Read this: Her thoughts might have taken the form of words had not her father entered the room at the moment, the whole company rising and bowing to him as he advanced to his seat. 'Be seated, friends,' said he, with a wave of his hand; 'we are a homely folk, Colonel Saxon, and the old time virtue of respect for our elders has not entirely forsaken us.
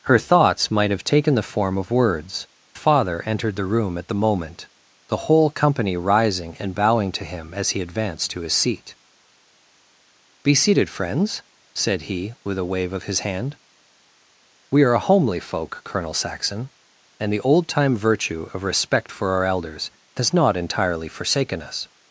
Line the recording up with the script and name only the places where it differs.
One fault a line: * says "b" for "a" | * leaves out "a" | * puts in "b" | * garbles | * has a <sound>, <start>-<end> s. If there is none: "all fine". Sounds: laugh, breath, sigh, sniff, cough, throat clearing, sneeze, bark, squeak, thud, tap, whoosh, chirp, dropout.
* leaves out "had not her"